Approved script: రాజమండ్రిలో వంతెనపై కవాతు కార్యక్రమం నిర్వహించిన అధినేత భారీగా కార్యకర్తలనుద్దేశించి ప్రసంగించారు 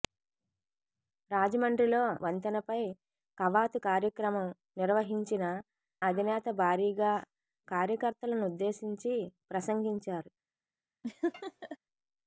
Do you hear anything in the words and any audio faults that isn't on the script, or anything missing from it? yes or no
yes